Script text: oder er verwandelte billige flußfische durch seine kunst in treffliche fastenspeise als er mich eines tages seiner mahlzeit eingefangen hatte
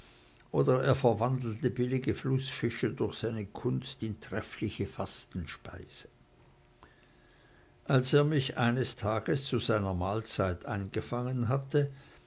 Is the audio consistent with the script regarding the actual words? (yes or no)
no